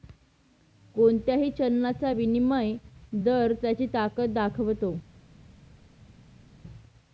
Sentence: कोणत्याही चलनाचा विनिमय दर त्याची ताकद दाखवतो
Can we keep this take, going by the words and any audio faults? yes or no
yes